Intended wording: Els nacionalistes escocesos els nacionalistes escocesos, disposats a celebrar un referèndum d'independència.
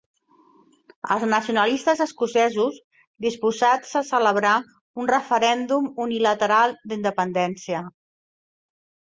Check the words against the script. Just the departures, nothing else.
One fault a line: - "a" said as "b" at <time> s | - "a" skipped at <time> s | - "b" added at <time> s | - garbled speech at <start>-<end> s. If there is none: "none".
- "els nacionalistes escocesos" skipped at 2.8 s
- "unilateral" added at 6.1 s